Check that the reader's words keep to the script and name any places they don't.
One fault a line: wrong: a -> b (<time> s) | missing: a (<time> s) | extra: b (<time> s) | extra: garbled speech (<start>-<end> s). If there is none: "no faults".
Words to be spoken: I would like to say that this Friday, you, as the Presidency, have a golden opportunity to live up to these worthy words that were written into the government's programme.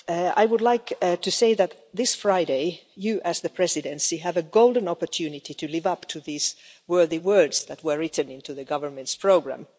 no faults